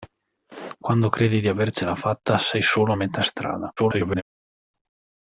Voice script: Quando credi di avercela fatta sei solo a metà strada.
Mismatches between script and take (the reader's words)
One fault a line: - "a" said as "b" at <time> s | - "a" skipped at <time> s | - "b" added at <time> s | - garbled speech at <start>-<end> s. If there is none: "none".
- garbled speech at 3.8-4.2 s